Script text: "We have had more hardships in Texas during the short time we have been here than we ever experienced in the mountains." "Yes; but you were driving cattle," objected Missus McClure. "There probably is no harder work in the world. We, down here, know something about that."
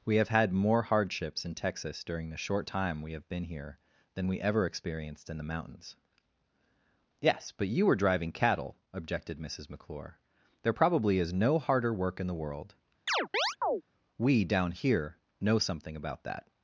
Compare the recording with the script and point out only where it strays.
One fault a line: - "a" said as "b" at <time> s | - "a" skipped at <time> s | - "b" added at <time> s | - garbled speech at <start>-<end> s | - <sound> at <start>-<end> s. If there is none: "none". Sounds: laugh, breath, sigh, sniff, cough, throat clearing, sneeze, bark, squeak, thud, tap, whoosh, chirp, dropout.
- chirp at 13.1-13.8 s